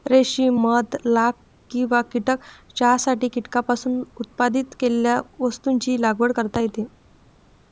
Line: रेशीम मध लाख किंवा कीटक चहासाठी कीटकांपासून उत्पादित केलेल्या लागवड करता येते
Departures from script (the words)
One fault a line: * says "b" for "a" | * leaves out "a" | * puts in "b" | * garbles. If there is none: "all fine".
* puts in "वस्तूंची"